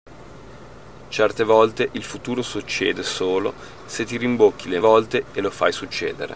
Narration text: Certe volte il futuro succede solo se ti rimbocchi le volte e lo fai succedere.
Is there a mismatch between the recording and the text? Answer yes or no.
no